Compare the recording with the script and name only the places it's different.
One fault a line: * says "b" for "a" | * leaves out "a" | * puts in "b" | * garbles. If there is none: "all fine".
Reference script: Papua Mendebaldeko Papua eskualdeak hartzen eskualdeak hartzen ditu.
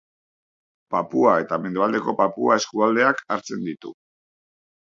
* puts in "eta"
* leaves out "eskualdeak hartzen"